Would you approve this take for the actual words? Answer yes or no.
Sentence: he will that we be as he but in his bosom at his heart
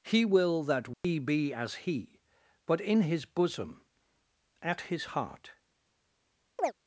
yes